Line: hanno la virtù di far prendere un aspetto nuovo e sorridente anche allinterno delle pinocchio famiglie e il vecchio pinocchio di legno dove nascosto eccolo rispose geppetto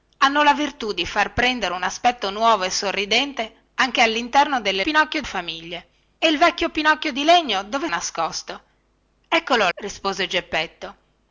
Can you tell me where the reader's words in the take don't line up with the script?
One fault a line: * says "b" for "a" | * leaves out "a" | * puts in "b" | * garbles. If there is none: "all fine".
all fine